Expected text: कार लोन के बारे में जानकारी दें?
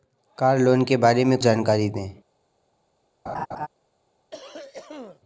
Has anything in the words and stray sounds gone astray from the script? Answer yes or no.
yes